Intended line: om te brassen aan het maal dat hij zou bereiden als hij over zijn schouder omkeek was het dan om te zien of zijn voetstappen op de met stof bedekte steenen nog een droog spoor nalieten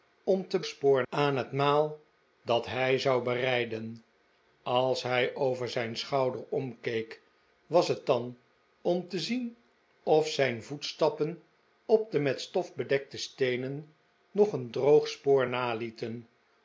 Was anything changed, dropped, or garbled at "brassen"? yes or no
yes